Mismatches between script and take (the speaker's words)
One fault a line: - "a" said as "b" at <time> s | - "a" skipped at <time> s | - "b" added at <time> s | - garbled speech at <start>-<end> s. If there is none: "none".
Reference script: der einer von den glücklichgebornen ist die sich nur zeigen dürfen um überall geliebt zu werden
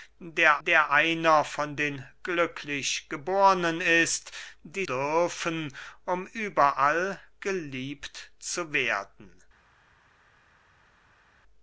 - "der" added at 0.6 s
- "sich nur zeigen" skipped at 4.9 s